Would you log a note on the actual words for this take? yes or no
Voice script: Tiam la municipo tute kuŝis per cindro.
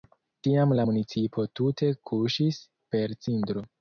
no